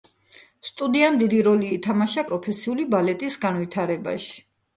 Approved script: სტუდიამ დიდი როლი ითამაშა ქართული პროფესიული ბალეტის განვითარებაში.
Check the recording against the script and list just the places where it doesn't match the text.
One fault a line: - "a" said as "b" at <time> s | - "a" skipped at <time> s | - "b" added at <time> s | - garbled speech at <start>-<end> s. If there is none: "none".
- "ქართული" skipped at 2.2 s